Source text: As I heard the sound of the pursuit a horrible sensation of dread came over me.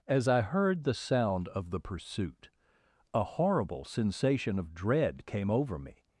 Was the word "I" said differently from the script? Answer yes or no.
no